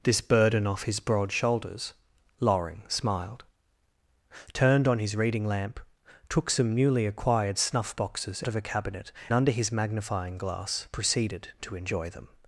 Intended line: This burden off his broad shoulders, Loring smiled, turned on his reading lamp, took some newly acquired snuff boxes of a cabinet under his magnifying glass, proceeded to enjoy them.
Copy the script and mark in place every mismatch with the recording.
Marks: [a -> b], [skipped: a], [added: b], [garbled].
This burden off his broad shoulders, Loring smiled, turned on his reading lamp, took some newly acquired snuff boxes of a cabinet under his magnifying glass, proceeded to enjoy them.